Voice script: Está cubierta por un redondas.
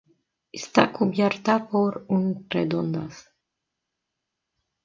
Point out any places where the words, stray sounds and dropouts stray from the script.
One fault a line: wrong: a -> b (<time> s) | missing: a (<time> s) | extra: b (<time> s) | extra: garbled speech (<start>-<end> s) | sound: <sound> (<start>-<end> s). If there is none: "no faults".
no faults